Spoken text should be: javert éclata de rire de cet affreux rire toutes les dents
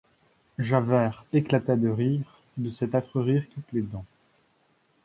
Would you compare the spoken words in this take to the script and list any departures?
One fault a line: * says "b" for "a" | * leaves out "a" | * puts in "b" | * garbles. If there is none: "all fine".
all fine